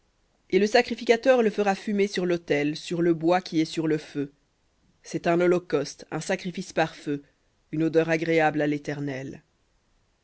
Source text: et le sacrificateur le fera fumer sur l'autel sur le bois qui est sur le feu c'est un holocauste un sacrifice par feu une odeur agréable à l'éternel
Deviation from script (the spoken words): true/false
false